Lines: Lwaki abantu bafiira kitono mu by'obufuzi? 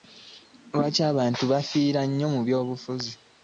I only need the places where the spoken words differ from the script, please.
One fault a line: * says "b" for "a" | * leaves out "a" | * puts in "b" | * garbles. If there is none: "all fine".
* says "nnyo" for "kitono"